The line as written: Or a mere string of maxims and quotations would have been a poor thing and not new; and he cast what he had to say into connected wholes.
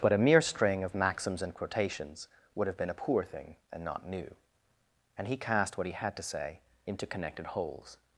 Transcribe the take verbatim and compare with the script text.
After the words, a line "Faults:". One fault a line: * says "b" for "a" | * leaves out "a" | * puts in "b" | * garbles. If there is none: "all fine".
But a mere string of maxims and quotations would have been a poor thing and not new; and he cast what he had to say into connected wholes.
Faults:
* says "But" for "Or"